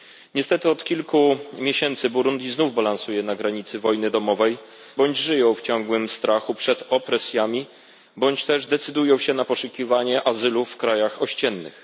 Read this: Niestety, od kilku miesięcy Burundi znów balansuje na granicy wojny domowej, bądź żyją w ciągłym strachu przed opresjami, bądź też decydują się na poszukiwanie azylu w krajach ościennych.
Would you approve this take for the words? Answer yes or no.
yes